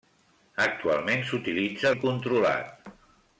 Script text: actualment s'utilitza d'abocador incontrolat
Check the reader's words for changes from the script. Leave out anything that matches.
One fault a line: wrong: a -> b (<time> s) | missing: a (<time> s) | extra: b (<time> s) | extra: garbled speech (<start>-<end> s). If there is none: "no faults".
missing: d'abocador (1.9 s)